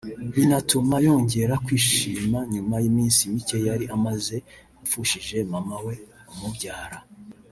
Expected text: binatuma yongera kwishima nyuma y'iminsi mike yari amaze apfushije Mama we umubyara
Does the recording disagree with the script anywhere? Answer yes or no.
no